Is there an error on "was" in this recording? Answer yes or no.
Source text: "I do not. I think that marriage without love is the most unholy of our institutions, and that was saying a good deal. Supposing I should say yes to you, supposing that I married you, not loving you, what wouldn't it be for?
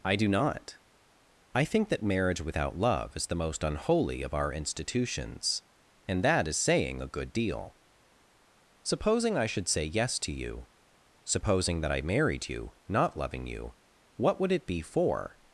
yes